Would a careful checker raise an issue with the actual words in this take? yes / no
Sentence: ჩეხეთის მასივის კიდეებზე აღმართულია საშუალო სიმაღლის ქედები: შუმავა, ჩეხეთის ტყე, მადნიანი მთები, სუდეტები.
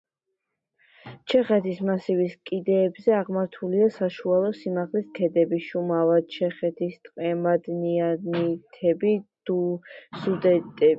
no